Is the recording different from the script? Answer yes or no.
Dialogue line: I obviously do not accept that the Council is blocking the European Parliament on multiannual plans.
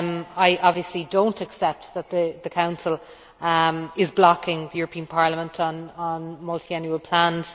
no